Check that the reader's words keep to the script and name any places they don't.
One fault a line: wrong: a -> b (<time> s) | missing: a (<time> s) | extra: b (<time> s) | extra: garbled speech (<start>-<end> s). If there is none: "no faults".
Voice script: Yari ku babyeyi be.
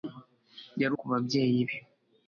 no faults